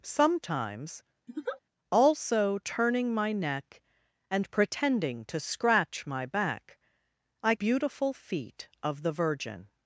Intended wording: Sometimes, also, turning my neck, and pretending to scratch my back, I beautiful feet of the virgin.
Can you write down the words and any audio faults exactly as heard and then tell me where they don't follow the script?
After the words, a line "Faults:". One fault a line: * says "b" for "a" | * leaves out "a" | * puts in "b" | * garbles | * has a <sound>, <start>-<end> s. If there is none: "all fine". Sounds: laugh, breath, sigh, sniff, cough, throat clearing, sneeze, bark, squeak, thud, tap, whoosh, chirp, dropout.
Sometimes, also, turning my neck, and pretending to scratch my back, I beautiful feet of the virgin.
Faults:
* has a laugh, 1.3-1.6 s